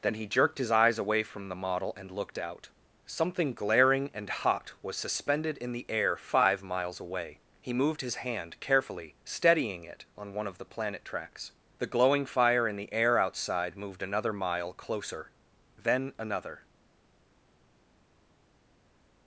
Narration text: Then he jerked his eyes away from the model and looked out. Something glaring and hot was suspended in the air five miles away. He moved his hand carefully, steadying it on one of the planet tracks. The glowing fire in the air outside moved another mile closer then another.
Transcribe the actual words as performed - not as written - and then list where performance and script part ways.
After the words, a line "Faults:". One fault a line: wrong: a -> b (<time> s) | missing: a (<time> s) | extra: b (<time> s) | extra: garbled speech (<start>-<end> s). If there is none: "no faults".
Then he jerked his eyes away from the model and looked out. Something glaring and hot was suspended in the air five miles away. He moved his hand carefully, steadying it on one of the planet tracks. The glowing fire in the air outside moved another mile closer then another.
Faults:
no faults